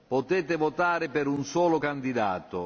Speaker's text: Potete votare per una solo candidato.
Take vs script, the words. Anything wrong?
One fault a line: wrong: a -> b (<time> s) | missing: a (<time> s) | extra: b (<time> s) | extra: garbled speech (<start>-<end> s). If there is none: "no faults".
wrong: una -> un (1.3 s)